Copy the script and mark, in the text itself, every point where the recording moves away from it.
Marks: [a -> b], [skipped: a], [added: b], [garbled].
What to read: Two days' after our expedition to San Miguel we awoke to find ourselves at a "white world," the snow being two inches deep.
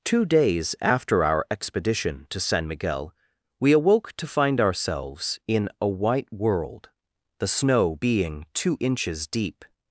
Two days' after our expedition to San Miguel we awoke to find ourselves [at -> in] a "white world," the snow being two inches deep.